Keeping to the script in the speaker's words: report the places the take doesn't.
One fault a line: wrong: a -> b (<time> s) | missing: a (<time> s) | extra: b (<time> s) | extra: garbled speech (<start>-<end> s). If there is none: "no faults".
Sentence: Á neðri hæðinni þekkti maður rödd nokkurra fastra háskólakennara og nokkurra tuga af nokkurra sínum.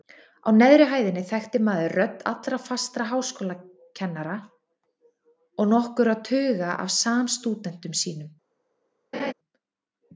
wrong: nokkurra -> allra (2.3 s)
wrong: nokkurra -> samstúdentum (7.0 s)